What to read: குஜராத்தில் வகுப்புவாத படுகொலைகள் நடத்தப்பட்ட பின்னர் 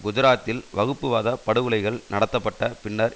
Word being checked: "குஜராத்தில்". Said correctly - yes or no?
yes